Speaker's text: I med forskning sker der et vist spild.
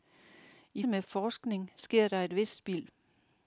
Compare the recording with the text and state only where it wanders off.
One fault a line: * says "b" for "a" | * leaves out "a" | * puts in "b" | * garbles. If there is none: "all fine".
all fine